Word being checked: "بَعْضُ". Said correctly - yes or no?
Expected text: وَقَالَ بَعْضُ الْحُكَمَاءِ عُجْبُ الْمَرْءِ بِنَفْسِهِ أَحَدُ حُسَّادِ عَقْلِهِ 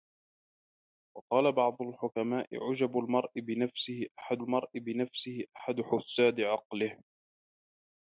yes